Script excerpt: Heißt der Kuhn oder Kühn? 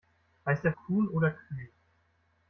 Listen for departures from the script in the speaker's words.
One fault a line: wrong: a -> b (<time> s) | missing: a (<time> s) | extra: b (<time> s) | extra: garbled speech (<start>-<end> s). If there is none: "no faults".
no faults